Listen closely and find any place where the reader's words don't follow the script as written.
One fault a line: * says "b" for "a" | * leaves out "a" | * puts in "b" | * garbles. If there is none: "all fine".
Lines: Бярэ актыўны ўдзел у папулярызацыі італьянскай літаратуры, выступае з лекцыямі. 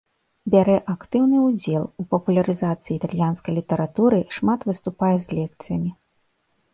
* puts in "шмат"